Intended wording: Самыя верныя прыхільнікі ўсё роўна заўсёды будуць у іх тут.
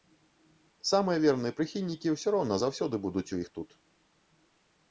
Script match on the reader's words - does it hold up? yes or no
yes